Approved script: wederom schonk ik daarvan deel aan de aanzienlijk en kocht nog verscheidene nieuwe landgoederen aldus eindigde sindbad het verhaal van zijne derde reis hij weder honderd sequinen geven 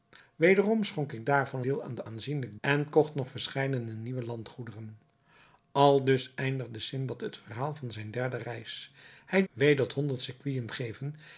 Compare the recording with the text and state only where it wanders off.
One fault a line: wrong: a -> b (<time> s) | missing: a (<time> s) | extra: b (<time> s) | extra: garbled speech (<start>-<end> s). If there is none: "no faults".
no faults